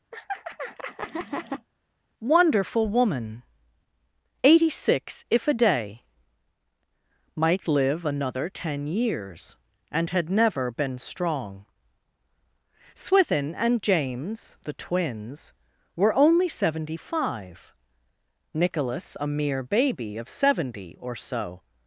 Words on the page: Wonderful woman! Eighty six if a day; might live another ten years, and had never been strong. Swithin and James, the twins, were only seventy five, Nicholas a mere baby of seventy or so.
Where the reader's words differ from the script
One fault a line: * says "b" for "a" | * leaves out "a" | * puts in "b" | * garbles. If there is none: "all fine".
all fine